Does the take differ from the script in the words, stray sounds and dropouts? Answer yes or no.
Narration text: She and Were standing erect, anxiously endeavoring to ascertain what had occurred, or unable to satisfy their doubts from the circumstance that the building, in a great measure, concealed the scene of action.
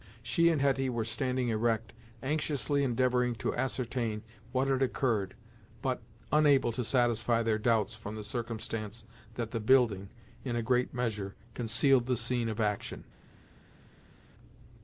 yes